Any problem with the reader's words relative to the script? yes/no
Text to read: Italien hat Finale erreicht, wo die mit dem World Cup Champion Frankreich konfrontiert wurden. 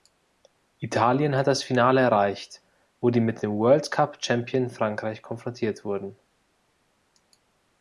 yes